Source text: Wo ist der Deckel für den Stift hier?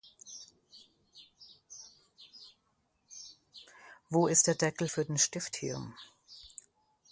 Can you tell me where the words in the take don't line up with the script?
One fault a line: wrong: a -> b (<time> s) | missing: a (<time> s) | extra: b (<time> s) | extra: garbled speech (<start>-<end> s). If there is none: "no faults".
no faults